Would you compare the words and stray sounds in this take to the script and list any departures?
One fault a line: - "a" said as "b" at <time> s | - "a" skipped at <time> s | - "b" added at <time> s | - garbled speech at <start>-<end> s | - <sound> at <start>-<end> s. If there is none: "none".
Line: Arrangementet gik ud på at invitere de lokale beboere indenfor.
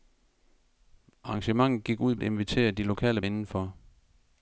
- "på" skipped at 2.1 s
- "beboere" skipped at 3.2 s